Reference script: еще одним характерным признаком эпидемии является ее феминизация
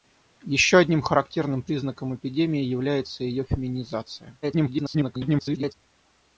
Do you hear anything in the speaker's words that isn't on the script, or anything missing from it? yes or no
yes